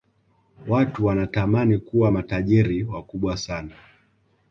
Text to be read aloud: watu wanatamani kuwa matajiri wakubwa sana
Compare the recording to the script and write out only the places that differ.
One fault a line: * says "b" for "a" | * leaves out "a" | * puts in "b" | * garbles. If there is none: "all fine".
all fine